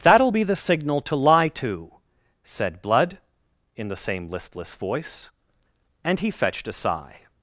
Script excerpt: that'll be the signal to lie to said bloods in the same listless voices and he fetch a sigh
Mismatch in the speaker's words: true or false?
true